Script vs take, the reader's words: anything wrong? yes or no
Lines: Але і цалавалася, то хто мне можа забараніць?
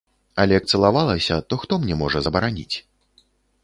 no